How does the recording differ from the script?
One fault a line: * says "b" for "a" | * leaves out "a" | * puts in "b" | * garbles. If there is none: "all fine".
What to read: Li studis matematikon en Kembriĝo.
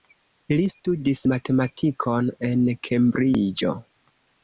all fine